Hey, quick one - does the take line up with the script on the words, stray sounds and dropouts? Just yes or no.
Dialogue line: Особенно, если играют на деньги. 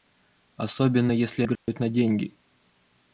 no